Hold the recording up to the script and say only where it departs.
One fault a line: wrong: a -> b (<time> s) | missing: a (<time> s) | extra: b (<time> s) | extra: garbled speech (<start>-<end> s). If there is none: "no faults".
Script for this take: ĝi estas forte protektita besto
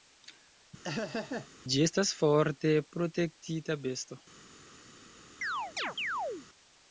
no faults